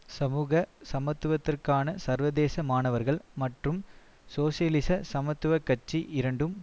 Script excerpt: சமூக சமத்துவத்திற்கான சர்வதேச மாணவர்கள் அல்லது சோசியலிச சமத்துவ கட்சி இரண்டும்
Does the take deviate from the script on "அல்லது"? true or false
true